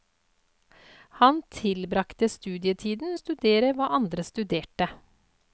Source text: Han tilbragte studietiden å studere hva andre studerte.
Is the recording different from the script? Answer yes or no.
no